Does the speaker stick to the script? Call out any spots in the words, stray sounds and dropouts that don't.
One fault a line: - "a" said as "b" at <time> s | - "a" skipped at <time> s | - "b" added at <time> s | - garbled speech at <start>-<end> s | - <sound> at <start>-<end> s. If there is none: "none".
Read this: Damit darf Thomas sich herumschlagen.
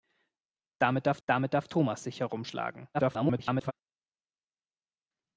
- "damit darf" added at 1.3 s
- garbled speech at 2.9-3.7 s